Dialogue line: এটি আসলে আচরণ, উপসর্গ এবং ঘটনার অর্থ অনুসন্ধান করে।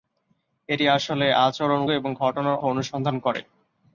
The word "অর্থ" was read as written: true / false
false